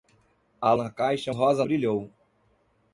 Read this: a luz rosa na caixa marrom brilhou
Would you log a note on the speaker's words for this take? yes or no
yes